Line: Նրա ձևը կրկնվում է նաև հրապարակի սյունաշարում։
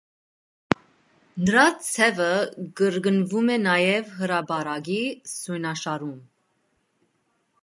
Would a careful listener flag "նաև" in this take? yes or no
no